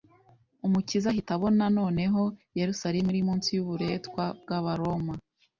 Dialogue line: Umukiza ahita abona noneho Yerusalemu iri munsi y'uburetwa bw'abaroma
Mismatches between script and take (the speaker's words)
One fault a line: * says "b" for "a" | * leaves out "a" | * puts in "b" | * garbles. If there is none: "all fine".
all fine